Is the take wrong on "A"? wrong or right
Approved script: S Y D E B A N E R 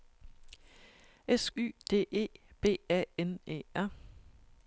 right